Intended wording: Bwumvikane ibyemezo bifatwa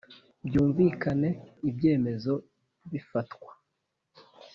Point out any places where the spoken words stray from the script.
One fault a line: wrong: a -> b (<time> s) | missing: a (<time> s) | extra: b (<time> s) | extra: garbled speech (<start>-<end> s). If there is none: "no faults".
no faults